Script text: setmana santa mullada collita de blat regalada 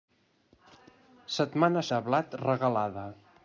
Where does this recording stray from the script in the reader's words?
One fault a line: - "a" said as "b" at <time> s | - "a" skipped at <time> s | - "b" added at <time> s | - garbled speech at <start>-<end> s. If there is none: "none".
- "santa mullada collita" skipped at 1.8 s